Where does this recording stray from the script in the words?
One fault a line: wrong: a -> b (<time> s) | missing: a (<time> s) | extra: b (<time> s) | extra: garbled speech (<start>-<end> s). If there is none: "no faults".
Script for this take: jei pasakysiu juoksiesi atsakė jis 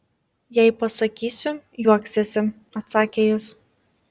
no faults